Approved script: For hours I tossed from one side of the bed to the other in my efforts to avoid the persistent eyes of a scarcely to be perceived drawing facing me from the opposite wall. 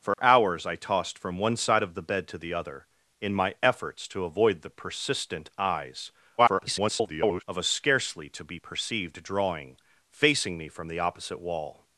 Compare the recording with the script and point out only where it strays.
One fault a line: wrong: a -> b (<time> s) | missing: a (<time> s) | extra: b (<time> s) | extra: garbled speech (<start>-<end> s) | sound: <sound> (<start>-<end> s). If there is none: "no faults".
sound: dropout (0.1-0.2 s)
extra: garbled speech (6.4-7.4 s)